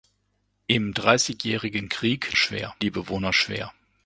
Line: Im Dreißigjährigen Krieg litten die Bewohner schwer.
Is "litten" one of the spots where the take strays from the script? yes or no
yes